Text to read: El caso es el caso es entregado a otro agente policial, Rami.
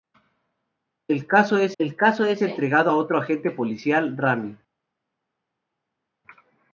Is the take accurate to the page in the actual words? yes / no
yes